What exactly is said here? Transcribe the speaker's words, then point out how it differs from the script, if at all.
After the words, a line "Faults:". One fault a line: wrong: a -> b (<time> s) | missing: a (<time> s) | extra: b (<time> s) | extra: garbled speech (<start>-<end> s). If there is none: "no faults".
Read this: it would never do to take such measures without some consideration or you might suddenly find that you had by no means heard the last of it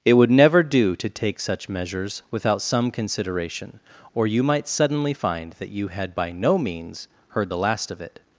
it would never do to take such measures without some consideration or you might suddenly find that you had by no means heard the last of it
Faults:
no faults